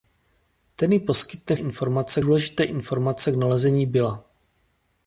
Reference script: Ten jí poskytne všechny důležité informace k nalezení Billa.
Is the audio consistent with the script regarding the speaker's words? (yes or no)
no